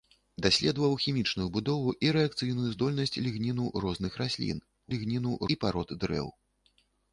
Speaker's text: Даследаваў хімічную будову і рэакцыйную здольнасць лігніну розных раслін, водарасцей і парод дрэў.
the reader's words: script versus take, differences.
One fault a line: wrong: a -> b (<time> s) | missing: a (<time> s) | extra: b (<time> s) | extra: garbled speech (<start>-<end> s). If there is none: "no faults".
wrong: водарасцей -> лігніну (5.0 s)